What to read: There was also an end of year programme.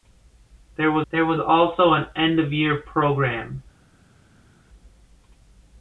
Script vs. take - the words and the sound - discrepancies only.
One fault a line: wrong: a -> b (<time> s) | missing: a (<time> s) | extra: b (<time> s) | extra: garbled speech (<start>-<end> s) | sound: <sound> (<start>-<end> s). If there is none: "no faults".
extra: there was (1.1 s)